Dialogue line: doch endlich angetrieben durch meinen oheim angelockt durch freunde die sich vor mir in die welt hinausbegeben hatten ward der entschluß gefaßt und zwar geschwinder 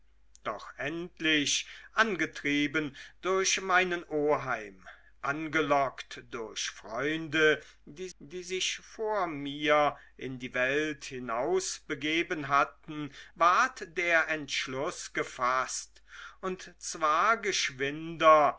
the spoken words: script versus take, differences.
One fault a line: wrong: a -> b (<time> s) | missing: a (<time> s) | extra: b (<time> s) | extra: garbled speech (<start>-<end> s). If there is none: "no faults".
extra: die (8.2 s)